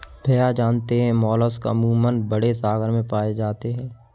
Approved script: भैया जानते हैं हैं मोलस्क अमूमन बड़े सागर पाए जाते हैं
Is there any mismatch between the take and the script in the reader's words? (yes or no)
yes